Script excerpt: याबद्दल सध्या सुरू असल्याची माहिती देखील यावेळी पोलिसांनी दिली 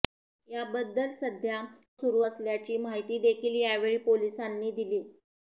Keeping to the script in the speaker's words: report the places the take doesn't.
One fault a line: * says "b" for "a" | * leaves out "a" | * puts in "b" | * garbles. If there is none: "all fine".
all fine